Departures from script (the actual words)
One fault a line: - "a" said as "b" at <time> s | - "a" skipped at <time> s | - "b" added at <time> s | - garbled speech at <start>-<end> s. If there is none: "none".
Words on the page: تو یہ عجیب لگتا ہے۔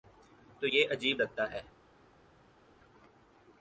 none